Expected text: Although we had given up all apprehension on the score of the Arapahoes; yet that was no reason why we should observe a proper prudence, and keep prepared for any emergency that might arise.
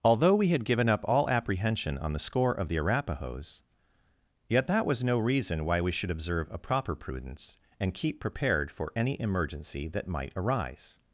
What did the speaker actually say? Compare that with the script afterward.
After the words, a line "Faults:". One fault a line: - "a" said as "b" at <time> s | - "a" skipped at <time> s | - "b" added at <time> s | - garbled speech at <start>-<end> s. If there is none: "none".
Although we had given up all apprehension on the score of the Arapahoes; yet that was no reason why we should observe a proper prudence, and keep prepared for any emergency that might arise.
Faults:
none